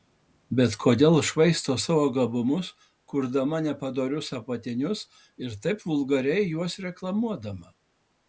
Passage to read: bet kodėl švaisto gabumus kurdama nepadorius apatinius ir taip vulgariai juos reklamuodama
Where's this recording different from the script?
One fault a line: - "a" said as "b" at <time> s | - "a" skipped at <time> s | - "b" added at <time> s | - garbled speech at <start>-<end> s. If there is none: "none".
- "savo" added at 1.8 s